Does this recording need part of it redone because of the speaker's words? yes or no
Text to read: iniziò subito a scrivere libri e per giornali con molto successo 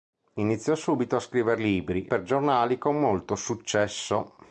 yes